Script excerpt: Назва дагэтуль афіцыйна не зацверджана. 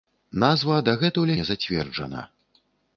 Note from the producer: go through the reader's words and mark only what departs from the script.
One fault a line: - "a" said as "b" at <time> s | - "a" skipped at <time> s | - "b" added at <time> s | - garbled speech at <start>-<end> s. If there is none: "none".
- "афіцыйна" skipped at 1.4 s